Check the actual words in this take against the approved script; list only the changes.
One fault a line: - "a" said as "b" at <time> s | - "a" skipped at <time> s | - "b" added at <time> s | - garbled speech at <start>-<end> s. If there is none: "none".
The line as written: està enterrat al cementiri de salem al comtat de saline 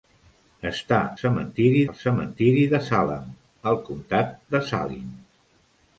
- "enterrat" said as "cementiri" at 1.2 s